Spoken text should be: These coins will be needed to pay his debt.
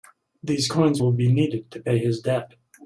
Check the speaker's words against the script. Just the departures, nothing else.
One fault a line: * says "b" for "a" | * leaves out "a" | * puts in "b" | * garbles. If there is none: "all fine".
all fine